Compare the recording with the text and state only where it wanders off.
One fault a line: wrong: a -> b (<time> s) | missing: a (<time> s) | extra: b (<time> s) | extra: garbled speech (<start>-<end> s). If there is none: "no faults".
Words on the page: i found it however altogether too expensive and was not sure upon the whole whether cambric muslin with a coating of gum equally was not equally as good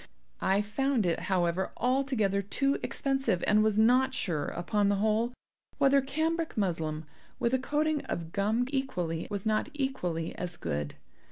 no faults